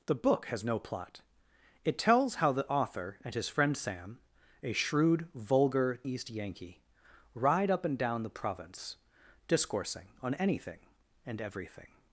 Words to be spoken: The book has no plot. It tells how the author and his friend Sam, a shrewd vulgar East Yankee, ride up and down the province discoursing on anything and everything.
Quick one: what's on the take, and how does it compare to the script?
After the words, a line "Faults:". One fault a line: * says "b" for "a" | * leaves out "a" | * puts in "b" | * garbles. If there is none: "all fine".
The book has no plot. It tells how the author and his friend Sam, a shrewd vulgar East Yankee, ride up and down the province discoursing on anything and everything.
Faults:
all fine